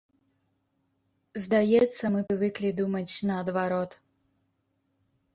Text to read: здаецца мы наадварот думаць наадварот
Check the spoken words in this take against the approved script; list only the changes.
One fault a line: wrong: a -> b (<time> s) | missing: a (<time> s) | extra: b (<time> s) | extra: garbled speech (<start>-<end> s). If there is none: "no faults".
wrong: наадварот -> прывыклі (2.2 s)